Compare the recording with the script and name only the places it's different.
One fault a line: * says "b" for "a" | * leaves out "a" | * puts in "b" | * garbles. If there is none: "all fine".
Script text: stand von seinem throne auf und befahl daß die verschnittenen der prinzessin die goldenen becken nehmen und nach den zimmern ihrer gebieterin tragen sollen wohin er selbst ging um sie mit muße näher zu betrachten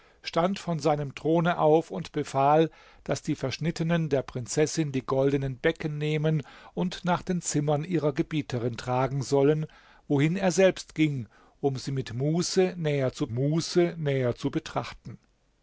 * puts in "muße näher zu"